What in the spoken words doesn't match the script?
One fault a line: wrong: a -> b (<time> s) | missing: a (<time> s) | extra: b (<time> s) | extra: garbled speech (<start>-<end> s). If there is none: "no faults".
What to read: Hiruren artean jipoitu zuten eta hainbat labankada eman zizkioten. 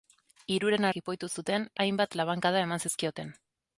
missing: artean (0.9 s)
missing: eta (1.7 s)